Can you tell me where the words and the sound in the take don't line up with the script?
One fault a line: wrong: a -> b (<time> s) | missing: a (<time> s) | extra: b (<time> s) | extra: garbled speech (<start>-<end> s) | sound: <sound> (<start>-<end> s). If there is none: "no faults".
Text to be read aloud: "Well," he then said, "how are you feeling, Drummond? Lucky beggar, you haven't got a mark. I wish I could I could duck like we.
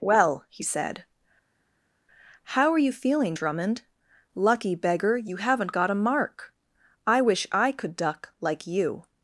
missing: then (0.6 s)
missing: I could (7.9 s)
wrong: we -> you (8.6 s)